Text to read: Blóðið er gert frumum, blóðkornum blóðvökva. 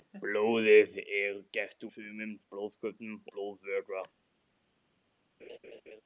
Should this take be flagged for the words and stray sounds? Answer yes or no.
yes